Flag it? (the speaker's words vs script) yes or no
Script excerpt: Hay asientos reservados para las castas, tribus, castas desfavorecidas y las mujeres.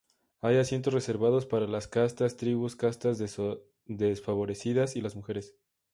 no